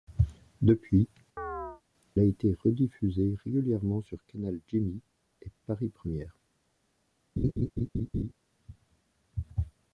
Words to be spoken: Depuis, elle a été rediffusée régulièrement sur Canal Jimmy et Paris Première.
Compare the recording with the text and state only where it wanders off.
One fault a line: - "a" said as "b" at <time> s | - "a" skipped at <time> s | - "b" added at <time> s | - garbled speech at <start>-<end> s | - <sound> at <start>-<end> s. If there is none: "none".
- "elle" skipped at 1.1 s
- chirp at 1.4-1.8 s
- laugh at 7.4-8.3 s